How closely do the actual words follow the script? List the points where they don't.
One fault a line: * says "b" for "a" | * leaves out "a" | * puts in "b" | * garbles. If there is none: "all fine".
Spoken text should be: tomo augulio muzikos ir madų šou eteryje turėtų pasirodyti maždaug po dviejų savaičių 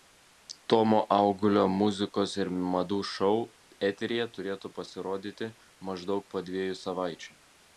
all fine